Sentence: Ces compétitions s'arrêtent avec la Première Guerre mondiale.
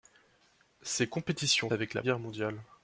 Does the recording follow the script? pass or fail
fail